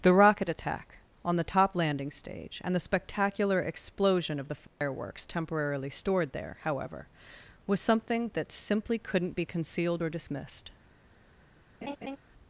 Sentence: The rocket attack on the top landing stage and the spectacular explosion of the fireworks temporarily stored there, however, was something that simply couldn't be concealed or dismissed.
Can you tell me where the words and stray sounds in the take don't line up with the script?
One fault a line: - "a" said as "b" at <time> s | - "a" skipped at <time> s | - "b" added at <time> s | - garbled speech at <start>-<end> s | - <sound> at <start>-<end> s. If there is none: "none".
- dropout at 4.7-4.8 s
- laugh at 11.8-12.2 s